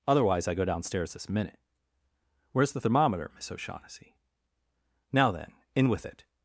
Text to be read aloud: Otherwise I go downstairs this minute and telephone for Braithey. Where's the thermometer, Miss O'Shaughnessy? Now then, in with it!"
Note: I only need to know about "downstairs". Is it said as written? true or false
true